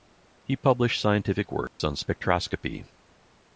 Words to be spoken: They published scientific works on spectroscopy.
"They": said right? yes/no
no